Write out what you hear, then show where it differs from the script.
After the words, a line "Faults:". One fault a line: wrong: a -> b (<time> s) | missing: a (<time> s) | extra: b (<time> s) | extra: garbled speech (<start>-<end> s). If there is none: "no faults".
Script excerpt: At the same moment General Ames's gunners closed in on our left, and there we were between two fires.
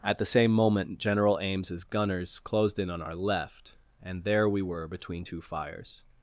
At the same moment General Ames's gunners closed in on our left, and there we were between two fires.
Faults:
no faults